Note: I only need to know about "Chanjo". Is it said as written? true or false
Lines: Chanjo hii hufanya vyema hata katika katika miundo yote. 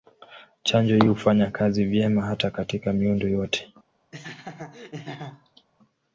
true